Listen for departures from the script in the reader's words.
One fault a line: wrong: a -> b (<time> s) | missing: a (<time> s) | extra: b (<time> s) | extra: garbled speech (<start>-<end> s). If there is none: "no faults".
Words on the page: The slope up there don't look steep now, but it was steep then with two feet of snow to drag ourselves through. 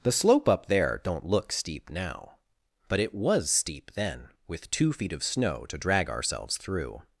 no faults